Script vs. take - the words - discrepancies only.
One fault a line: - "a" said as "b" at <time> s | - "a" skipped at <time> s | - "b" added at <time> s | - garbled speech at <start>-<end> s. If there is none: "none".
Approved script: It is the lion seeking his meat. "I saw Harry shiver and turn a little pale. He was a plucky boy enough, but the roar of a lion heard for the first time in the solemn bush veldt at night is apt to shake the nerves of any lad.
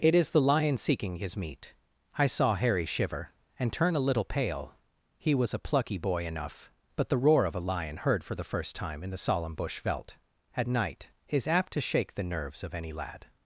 none